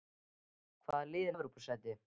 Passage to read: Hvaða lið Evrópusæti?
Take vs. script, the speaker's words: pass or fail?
pass